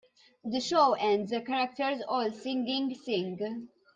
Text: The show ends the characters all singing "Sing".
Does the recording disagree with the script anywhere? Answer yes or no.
no